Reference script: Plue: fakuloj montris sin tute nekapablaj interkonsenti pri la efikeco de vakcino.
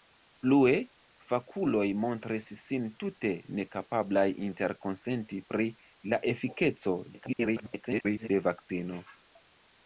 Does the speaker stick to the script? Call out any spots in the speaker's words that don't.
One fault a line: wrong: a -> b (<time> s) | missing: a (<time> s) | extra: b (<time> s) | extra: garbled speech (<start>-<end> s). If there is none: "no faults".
extra: garbled speech (7.1-8.3 s)